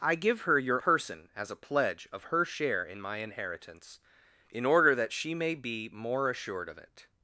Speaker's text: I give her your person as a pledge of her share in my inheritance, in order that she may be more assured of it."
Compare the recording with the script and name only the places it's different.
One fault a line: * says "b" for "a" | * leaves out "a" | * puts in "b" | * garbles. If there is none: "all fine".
all fine